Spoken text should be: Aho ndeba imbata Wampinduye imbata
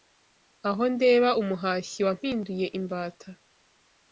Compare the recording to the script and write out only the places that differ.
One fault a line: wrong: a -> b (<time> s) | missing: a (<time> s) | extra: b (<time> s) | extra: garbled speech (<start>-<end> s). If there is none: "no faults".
wrong: imbata -> umuhashyi (1.4 s)